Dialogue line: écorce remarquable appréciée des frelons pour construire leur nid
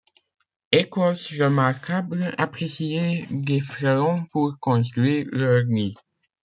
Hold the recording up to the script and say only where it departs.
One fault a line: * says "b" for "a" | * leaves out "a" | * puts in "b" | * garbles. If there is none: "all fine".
all fine